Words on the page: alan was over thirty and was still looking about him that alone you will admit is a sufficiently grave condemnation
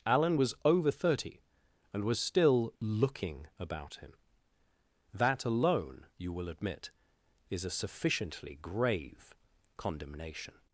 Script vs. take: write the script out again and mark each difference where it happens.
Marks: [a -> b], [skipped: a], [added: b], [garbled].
alan was over thirty and was still looking about him that alone you will admit is a sufficiently grave condemnation